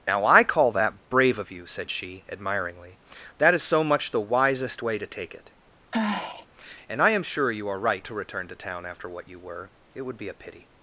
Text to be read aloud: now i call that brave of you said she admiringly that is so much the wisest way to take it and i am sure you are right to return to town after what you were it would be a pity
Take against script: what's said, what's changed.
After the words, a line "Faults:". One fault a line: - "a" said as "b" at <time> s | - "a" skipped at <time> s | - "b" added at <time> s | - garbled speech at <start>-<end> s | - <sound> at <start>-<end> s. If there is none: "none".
now i call that brave of you said she admiringly that is so much the wisest way to take it and i am sure you are right to return to town after what you were it would be a pity
Faults:
- sigh at 5.9-6.5 s